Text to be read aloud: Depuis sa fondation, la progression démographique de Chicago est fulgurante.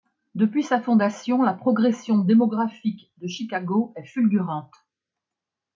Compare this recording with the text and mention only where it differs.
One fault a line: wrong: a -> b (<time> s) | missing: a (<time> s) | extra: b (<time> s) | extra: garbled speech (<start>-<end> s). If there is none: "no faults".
no faults